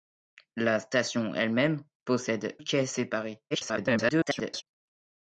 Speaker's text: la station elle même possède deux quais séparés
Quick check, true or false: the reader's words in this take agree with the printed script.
false